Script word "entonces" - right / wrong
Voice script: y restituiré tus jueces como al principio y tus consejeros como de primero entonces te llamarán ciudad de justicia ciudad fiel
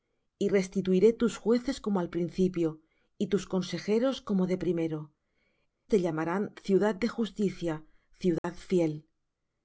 wrong